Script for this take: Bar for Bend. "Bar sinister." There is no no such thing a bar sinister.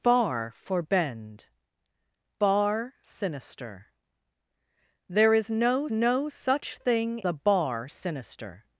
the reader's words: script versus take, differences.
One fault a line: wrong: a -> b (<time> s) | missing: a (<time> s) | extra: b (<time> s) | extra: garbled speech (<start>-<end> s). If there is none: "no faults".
no faults